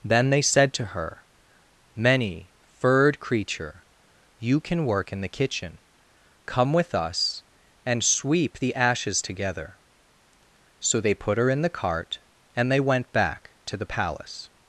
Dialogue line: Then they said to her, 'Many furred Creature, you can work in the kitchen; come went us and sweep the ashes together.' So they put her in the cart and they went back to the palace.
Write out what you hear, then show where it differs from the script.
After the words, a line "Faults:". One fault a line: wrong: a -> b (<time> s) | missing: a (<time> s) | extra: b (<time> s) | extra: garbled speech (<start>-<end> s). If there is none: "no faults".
Then they said to her, 'Many furred Creature, you can work in the kitchen; come with us and sweep the ashes together.' So they put her in the cart and they went back to the palace.
Faults:
wrong: went -> with (6.7 s)